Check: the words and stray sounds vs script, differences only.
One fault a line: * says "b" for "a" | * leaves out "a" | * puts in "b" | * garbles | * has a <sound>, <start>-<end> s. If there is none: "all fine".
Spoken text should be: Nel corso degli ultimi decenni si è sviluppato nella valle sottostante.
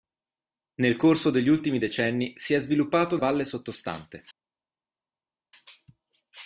* leaves out "nella"